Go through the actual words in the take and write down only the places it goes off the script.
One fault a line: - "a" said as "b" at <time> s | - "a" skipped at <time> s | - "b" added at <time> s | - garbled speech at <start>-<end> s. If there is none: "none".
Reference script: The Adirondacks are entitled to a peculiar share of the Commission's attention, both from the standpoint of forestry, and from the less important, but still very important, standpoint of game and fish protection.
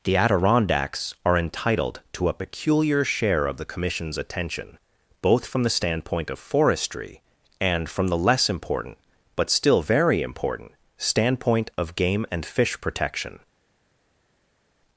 none